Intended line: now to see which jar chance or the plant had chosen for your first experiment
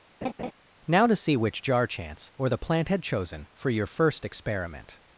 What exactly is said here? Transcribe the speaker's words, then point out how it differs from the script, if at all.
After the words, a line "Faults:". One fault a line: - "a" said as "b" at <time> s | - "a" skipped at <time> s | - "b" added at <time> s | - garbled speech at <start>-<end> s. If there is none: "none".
now to see which jar chance or the plant had chosen for your first experiment
Faults:
none